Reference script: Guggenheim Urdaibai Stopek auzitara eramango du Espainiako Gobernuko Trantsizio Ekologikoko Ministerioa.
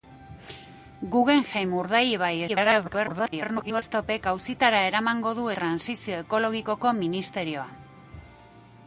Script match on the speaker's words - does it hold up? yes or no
no